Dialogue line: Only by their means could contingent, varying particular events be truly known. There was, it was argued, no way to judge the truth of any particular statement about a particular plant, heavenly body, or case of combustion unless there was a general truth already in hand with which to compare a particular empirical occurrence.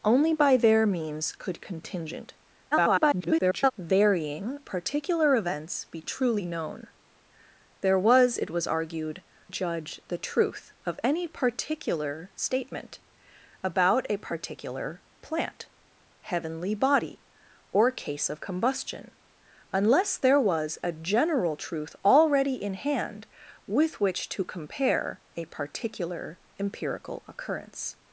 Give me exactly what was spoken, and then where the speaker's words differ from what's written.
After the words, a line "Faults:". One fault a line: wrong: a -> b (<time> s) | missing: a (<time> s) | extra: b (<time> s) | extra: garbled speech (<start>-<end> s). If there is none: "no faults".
Only by their means could contingent, [garbled] varying particular events be truly known. There was, it was argued, judge the truth of any particular statement about a particular plant, heavenly body, or case of combustion unless there was a general truth already in hand with which to compare a particular empirical occurrence.
Faults:
extra: garbled speech (2.7-3.7 s)
missing: no way to (9.2 s)